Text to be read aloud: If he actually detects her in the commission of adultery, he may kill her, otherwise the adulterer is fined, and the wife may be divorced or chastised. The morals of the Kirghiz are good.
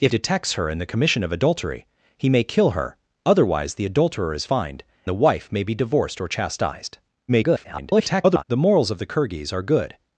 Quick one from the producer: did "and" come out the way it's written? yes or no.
no